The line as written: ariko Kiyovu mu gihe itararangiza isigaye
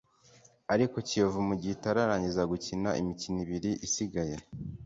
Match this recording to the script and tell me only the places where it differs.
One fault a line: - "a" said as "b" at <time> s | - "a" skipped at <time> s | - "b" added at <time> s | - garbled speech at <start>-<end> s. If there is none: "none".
- "gukina imikino ibiri" added at 2.5 s